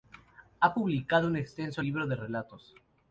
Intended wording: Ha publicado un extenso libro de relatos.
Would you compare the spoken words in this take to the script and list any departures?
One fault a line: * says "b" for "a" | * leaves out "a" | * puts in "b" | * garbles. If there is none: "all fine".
all fine